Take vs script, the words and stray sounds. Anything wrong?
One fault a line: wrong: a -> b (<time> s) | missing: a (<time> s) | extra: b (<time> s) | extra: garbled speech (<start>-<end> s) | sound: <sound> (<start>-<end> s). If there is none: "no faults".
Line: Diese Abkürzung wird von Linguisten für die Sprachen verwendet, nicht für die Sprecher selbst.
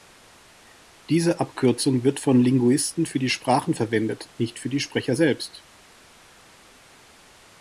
no faults